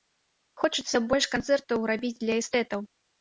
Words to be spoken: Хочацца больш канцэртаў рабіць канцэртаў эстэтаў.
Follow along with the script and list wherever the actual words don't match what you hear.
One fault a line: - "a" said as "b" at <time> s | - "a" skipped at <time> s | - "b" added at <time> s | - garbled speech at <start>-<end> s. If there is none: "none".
- "канцэртаў" said as "для" at 2.2 s